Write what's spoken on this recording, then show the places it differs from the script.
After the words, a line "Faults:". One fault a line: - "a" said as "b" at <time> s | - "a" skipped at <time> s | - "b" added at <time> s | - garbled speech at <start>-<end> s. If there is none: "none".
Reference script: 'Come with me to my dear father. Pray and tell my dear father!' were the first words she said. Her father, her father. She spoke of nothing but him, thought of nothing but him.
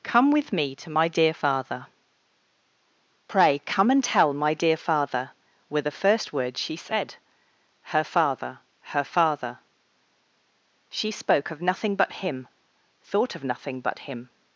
'Come with me to my dear father. Pray come and tell my dear father!' were the first words she said. Her father, her father. She spoke of nothing but him, thought of nothing but him.
Faults:
- "come" added at 3.6 s